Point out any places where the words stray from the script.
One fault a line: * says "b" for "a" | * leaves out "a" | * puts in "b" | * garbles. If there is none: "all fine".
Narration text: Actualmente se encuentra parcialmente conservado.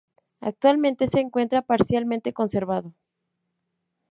all fine